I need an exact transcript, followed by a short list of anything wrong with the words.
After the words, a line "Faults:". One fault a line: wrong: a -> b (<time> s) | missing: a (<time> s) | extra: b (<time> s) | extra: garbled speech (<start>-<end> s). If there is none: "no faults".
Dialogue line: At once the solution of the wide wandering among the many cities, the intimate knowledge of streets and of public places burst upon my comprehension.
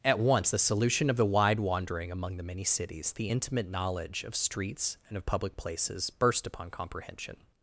At once the solution of the wide wandering among the many cities, the intimate knowledge of streets and of public places burst upon comprehension.
Faults:
missing: my (6.7 s)